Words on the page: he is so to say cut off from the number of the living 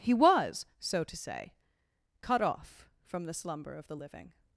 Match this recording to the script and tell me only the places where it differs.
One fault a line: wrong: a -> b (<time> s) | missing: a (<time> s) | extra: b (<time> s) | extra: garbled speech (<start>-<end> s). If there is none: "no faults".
wrong: is -> was (0.1 s)
wrong: number -> slumber (3.3 s)